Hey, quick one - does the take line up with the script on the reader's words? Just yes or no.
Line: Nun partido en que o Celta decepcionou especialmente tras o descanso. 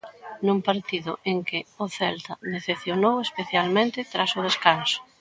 yes